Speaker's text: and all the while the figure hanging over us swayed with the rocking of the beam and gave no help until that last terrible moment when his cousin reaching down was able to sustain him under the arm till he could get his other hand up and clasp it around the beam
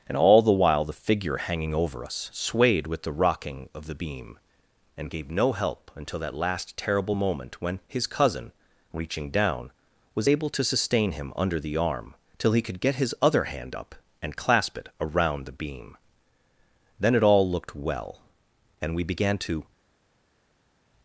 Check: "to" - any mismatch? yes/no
no